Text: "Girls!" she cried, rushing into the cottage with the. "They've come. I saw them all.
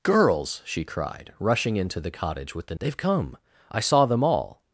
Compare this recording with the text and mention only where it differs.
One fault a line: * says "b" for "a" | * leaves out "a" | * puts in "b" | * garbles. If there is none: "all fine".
all fine